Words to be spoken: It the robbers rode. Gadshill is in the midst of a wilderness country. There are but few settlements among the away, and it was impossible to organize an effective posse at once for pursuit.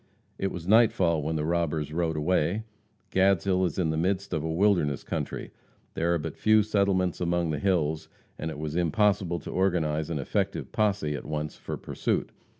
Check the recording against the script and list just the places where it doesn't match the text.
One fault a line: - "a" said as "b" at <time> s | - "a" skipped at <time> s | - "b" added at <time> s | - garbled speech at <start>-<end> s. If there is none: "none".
- "was nightfall when" added at 0.5 s
- "away" added at 2.2 s
- "away" said as "hills" at 7.6 s